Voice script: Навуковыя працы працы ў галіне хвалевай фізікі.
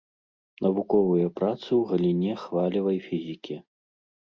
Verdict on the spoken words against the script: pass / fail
fail